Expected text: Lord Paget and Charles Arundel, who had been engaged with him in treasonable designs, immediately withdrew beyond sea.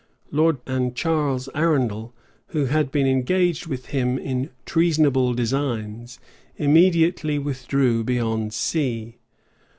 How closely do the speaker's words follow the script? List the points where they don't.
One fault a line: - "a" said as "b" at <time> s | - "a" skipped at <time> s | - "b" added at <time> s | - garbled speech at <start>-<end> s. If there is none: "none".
- "Paget" skipped at 0.6 s